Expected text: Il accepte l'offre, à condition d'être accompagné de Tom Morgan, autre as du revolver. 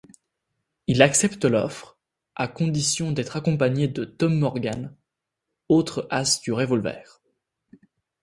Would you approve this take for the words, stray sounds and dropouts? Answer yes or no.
yes